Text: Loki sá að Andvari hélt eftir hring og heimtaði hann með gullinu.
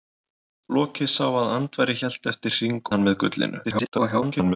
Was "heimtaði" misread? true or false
true